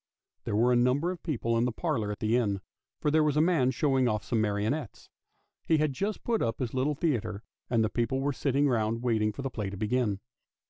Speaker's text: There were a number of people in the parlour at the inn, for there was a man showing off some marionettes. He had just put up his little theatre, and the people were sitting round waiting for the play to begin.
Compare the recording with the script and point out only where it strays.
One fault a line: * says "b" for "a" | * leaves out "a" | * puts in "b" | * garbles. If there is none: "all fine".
all fine